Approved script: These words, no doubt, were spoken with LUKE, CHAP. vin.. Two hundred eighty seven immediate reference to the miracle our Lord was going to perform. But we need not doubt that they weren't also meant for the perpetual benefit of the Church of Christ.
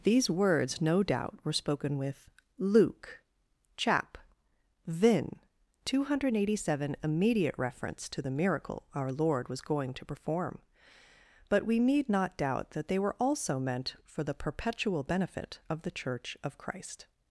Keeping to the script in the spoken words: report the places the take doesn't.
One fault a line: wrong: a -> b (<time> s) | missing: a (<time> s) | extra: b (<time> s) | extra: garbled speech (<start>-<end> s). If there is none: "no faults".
wrong: weren't -> were (13.0 s)